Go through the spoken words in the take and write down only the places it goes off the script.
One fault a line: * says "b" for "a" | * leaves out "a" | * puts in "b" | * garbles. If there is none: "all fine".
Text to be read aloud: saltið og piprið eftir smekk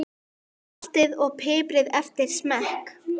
all fine